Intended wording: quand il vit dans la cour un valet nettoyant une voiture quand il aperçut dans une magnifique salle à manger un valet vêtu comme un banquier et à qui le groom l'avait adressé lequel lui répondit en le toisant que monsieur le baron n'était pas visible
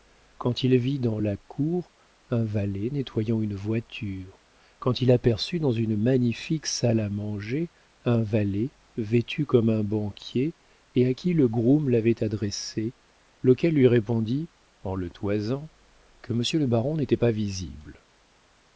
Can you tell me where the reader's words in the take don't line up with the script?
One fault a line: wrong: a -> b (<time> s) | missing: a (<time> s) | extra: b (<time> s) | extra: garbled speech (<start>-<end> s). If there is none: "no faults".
no faults